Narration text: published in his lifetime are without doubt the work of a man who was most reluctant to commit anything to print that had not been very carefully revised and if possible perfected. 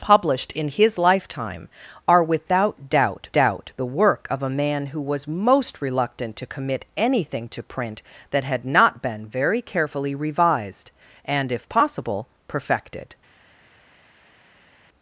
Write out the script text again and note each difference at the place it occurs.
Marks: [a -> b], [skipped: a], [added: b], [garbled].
published in his lifetime are without doubt [added: doubt] the work of a man who was most reluctant to commit anything to print that had not been very carefully revised and if possible perfected.